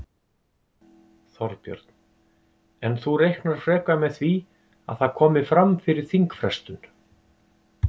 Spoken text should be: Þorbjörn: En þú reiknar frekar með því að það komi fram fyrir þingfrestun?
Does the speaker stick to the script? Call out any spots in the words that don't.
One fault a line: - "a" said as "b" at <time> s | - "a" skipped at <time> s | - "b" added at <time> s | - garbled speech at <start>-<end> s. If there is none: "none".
none